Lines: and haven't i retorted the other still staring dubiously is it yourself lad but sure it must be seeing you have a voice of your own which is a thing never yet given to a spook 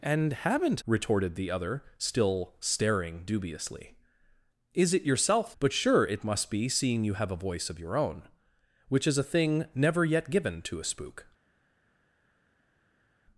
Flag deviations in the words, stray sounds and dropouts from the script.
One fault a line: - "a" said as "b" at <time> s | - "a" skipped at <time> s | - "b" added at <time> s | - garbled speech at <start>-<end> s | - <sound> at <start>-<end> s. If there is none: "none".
- "i" skipped at 0.8 s
- "lad" skipped at 5.5 s